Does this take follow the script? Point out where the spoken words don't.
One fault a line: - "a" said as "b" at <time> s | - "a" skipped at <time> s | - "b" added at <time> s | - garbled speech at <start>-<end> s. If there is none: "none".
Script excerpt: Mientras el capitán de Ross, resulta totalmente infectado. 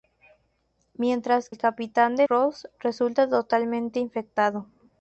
none